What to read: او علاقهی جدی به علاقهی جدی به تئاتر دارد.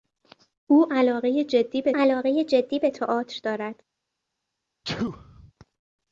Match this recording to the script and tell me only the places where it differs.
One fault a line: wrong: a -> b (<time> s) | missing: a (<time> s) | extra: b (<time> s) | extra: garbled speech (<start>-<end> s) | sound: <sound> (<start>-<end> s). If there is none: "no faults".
sound: sneeze (4.8-5.5 s)